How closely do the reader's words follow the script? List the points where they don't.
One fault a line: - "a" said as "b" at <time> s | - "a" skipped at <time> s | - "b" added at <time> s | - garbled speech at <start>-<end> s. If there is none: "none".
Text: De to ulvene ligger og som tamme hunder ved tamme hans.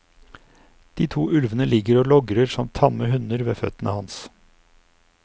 - "logrer" added at 2.1 s
- "tamme" said as "føttene" at 3.6 s